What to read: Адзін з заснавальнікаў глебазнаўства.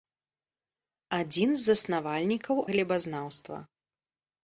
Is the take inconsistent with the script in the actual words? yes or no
no